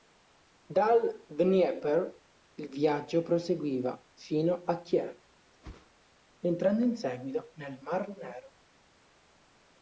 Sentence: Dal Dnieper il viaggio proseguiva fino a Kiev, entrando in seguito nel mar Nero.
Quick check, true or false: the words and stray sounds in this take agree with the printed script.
false